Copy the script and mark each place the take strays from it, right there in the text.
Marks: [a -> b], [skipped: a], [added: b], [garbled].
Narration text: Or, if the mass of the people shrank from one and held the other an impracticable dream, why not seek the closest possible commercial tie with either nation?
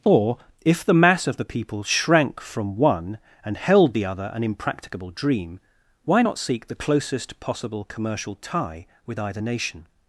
Or, if the mass of the people shrank from one and held the other an impracticable dream, why not seek the closest possible commercial tie with either nation?